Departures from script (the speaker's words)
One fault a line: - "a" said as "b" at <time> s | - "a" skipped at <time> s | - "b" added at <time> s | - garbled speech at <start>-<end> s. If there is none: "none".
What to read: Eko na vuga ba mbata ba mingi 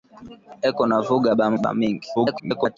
- "mbata" skipped at 1.5 s
- garbled speech at 2.2-2.8 s